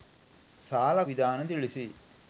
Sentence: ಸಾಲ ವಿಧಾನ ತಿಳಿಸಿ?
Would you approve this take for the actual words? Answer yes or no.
yes